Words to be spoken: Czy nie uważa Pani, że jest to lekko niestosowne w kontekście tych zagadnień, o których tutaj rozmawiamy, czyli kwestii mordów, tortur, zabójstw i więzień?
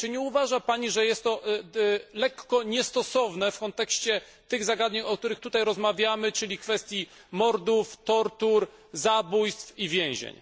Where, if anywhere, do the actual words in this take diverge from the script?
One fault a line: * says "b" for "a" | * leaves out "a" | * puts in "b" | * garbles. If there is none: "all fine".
all fine